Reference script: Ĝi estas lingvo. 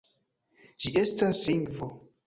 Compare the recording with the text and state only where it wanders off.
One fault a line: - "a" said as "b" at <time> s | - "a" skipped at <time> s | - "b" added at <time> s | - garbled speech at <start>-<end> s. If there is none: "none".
none